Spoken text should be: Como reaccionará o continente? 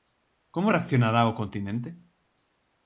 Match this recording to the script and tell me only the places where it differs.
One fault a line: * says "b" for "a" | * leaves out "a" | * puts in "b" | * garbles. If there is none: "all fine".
all fine